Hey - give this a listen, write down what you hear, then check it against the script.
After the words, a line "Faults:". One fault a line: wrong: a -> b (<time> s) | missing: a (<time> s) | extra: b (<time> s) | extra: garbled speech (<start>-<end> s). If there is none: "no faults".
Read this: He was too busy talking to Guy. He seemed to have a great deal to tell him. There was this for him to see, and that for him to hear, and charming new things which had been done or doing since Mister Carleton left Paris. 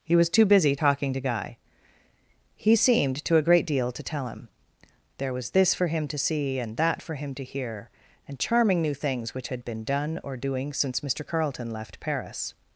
He was too busy talking to Guy. He seemed to a great deal to tell him. There was this for him to see, and that for him to hear, and charming new things which had been done or doing since Mister Carleton left Paris.
Faults:
missing: have (3.4 s)